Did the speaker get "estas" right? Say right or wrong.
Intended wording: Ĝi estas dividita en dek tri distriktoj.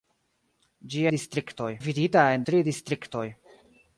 wrong